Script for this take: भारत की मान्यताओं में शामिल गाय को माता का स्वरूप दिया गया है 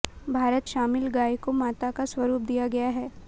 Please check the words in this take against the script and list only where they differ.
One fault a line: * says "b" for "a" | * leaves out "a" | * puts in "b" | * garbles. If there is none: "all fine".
* leaves out "की मान्यताओं में"